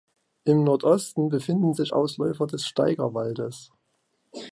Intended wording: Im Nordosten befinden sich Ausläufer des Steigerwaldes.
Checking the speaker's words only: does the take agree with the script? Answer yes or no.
yes